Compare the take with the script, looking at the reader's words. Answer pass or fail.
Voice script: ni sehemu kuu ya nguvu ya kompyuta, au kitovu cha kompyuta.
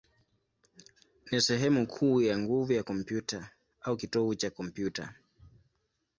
pass